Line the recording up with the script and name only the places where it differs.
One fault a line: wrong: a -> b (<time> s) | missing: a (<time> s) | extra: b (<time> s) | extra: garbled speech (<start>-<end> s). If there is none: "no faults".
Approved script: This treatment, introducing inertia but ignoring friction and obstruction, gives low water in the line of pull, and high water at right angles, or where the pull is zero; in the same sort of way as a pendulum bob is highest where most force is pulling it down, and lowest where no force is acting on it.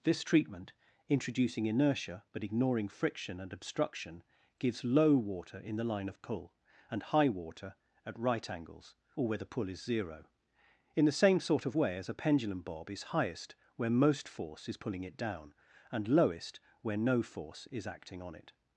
no faults